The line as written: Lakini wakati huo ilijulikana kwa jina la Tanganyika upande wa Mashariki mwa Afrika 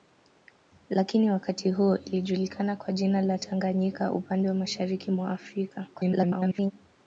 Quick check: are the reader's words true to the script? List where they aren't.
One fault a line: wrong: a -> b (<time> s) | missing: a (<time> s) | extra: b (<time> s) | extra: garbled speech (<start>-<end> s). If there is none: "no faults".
extra: garbled speech (5.9-6.7 s)